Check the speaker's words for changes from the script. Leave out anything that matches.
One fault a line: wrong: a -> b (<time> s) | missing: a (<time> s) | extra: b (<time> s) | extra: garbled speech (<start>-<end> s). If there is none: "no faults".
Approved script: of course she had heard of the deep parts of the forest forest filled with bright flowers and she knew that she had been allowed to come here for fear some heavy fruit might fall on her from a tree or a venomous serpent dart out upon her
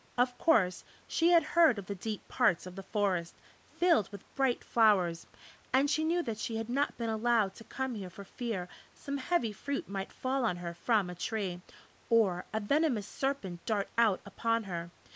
missing: forest (3.4 s)
extra: not (6.7 s)